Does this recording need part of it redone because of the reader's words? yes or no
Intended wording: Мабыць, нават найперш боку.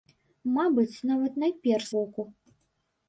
no